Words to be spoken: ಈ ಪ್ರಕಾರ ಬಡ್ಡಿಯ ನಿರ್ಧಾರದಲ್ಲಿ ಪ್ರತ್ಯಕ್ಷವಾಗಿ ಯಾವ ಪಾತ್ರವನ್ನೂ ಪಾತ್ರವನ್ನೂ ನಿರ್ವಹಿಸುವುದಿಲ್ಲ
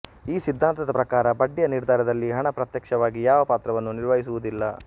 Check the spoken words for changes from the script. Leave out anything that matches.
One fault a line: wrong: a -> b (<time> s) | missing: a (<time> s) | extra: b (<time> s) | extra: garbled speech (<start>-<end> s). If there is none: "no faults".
extra: ಸಿದ್ಧಾಂತದ (0.4 s)
extra: ಹಣ (2.3 s)
missing: ಪಾತ್ರವನ್ನೂ (3.9 s)